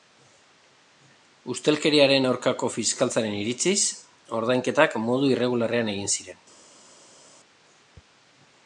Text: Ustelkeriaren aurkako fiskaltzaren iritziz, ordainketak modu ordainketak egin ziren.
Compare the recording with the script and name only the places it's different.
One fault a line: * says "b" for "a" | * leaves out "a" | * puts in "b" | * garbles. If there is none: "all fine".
* says "irregularrean" for "ordainketak"